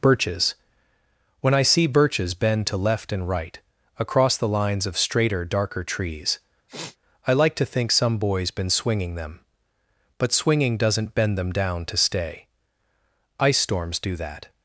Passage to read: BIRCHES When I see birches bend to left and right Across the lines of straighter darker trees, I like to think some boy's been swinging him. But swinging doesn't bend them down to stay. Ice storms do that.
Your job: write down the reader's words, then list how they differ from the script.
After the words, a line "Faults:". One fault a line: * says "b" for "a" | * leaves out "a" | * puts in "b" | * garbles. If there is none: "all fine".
BIRCHES When I see birches bend to left and right Across the lines of straighter darker trees, I like to think some boy's been swinging them. But swinging doesn't bend them down to stay. Ice storms do that.
Faults:
* says "them" for "him"